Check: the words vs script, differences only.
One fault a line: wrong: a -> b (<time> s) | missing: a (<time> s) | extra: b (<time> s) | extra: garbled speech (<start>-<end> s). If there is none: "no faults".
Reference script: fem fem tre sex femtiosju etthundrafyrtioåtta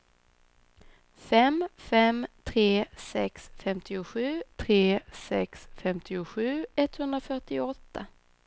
extra: tre sex femtiosju (4.6 s)